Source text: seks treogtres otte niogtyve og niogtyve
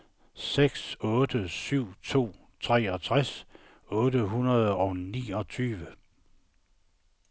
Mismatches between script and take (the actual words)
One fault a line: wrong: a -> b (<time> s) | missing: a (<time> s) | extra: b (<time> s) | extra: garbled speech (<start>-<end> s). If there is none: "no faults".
extra: otte syv to (1.0 s)
wrong: niogtyve -> hundrede (4.3 s)